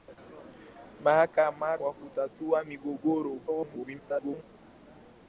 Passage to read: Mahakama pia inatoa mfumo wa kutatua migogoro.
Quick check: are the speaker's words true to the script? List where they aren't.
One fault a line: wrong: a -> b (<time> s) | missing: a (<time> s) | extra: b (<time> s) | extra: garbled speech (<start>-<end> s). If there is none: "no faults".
missing: pia inatoa mfumo (1.8 s)
extra: garbled speech (3.5-4.4 s)